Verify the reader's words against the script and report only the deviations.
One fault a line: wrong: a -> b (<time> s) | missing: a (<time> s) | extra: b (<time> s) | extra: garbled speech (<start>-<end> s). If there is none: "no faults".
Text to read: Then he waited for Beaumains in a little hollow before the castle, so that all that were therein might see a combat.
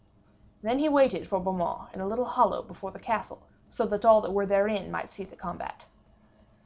wrong: a -> the (5.3 s)